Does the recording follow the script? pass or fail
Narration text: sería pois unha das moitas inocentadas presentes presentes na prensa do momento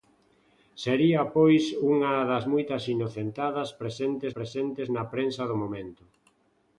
pass